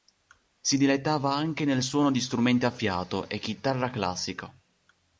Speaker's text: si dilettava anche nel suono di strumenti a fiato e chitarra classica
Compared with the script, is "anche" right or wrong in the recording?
right